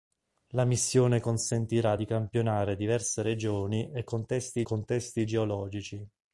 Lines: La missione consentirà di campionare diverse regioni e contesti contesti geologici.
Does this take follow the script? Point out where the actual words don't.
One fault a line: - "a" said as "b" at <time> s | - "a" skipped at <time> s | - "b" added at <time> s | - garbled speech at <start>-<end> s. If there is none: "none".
none